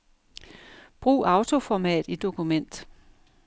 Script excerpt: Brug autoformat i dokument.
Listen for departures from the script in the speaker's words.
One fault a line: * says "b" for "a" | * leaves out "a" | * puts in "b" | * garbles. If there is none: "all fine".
all fine